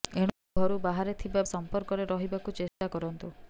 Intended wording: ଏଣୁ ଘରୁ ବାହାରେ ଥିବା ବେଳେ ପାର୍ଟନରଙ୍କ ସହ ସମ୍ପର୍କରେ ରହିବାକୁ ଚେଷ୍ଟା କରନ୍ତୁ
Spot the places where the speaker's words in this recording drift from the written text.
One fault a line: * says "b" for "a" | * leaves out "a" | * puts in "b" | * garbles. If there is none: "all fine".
* leaves out "ବେଳେ ପାର୍ଟନରଙ୍କ ସହ"